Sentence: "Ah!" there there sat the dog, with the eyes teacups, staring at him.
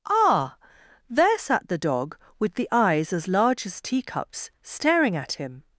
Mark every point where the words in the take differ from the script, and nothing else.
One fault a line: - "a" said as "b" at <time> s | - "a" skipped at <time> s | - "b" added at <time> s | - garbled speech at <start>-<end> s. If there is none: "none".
- "there" skipped at 1.4 s
- "as large as" added at 3.1 s